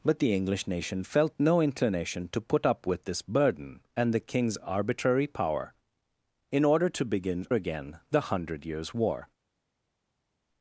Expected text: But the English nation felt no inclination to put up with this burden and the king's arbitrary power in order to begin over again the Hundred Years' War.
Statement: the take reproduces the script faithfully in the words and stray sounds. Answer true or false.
false